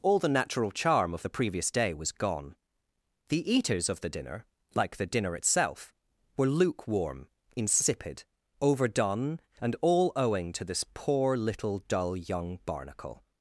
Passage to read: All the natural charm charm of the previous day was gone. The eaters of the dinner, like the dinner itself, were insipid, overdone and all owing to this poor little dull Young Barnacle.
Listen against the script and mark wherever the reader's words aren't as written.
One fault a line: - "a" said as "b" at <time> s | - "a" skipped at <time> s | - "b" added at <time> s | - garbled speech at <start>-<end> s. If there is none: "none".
- "charm" skipped at 1.1 s
- "lukewarm" added at 6.5 s